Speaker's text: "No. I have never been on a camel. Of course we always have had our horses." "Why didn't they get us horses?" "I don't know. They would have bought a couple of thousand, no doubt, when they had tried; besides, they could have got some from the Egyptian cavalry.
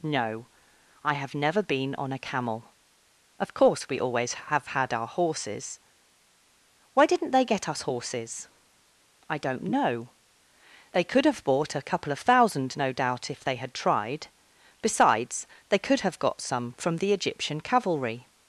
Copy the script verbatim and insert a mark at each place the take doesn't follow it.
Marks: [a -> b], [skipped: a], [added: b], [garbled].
"No. I have never been on a camel. Of course we always have had our horses." "Why didn't they get us horses?" "I don't know. They [would -> could] have bought a couple of thousand, no doubt, [when -> if] they had tried; besides, they could have got some from the Egyptian cavalry.